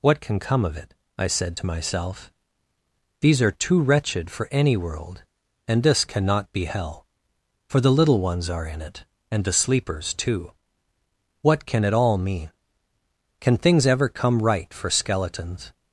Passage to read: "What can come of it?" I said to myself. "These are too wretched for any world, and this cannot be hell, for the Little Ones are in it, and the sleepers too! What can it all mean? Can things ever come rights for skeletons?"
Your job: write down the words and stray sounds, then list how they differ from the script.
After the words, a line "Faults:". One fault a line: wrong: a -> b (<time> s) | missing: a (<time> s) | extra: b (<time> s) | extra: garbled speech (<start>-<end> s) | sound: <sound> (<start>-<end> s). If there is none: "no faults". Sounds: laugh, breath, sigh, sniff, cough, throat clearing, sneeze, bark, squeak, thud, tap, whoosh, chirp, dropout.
"What can come of it?" I said to myself. "These are too wretched for any world, and this cannot be hell, for the Little Ones are in it, and the sleepers too! What can it all mean? Can things ever come right for skeletons?"
Faults:
wrong: rights -> right (14.4 s)